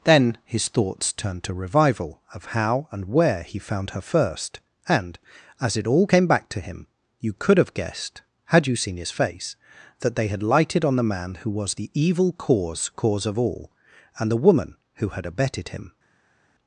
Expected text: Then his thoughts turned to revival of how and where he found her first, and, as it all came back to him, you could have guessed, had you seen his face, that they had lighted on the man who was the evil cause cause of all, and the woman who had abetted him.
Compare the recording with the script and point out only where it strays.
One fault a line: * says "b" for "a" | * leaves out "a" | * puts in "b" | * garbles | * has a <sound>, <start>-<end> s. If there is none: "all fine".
all fine